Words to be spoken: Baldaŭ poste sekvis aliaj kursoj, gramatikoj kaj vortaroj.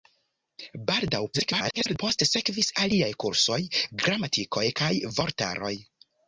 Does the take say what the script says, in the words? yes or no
no